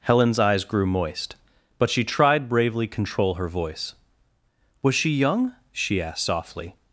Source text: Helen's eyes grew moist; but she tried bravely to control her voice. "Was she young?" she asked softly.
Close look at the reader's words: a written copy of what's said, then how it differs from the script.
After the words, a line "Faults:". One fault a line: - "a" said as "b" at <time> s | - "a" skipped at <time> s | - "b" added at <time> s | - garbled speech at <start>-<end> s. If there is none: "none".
Helen's eyes grew moist; but she tried bravely control her voice. "Was she young?" she asked softly.
Faults:
- "to" skipped at 2.9 s